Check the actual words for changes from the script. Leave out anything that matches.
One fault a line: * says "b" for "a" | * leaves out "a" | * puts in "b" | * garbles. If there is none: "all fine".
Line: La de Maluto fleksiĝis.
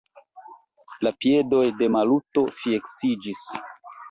* puts in "piedoj"